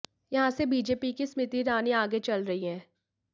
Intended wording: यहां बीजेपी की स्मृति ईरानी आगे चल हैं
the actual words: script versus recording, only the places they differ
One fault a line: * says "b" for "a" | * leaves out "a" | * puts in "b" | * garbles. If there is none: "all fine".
* puts in "से"
* puts in "रही"